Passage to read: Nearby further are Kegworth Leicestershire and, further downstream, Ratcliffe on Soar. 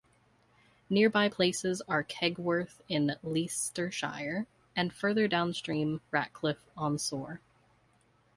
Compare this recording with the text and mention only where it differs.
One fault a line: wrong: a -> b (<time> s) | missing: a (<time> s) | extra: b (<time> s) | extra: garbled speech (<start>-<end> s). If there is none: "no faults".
wrong: further -> places (1.3 s)
extra: in (2.9 s)